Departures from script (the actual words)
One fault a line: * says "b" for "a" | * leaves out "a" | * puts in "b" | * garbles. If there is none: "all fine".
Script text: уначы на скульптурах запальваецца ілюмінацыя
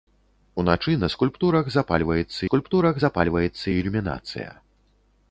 * puts in "скульптурах запальваецца"